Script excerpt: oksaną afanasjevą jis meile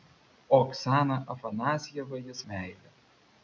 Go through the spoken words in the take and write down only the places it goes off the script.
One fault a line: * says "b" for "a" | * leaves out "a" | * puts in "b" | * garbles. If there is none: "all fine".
all fine